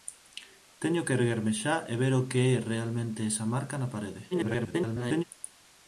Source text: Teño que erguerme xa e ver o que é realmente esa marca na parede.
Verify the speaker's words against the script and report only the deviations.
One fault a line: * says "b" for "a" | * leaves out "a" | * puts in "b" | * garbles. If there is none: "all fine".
* garbles